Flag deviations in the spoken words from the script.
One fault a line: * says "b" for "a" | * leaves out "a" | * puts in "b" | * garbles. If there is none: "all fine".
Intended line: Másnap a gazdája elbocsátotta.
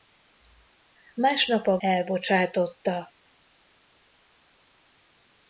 * leaves out "gazdája"